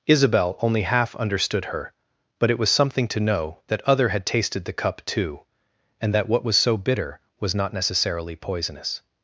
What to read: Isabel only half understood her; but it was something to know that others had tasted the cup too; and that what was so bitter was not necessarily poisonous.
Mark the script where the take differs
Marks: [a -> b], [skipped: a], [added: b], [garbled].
Isabel only half understood her; but it was something to know that [others -> other] had tasted the cup too; and that what was so bitter was not necessarily poisonous.